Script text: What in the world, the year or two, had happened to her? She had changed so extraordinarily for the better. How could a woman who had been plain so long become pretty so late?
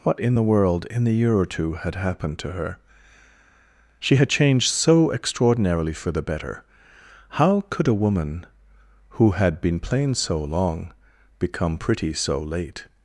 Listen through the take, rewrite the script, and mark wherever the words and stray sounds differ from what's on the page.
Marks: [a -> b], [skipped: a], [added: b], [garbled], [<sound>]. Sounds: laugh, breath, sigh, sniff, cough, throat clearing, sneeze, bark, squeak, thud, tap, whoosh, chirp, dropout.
What in the world, [added: in] the year or two, had happened to her? She had changed so extraordinarily for the better. How could a woman who had been plain so long become pretty so late?